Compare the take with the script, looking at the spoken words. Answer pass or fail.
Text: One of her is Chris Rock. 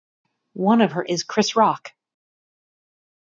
pass